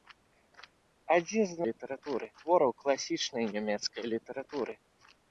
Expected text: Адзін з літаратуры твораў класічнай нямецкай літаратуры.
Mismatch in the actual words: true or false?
false